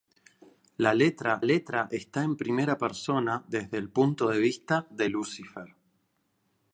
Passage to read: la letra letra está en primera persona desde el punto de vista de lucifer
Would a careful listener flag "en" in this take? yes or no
no